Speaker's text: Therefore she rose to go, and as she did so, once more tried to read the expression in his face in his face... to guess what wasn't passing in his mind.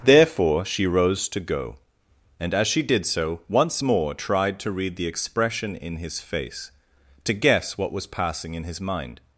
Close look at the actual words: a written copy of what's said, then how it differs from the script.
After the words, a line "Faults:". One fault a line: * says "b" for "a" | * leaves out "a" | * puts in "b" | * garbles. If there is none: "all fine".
Therefore she rose to go, and as she did so, once more tried to read the expression in his face... to guess what was passing in his mind.
Faults:
* leaves out "in his face"
* says "was" for "wasn't"